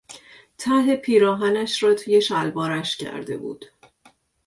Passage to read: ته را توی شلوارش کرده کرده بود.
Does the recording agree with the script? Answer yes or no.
no